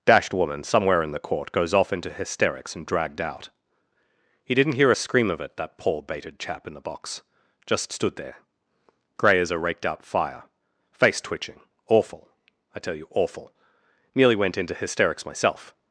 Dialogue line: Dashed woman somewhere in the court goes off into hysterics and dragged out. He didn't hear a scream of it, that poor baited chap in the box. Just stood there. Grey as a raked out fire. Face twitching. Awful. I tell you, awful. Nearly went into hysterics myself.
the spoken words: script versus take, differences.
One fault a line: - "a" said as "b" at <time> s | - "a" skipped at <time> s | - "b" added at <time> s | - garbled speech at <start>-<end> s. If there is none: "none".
none